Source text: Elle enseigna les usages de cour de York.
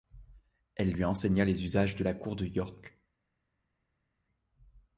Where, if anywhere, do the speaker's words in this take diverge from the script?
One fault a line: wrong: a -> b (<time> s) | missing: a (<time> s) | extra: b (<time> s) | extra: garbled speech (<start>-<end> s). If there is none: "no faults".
extra: lui (0.9 s)
extra: la (2.0 s)